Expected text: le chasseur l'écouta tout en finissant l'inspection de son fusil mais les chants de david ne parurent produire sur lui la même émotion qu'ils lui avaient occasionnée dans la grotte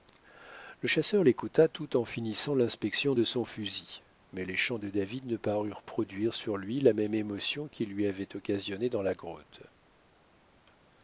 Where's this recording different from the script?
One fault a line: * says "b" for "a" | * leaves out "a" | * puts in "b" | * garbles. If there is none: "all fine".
all fine